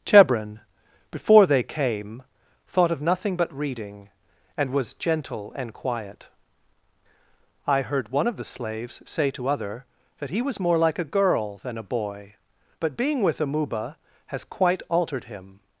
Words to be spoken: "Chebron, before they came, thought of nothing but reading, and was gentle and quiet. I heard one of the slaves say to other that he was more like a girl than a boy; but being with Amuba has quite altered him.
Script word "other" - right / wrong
right